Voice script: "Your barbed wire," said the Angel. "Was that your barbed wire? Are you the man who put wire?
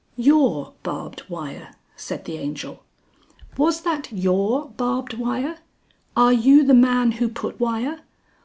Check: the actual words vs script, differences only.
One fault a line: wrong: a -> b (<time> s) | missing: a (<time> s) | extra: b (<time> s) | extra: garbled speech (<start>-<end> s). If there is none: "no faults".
no faults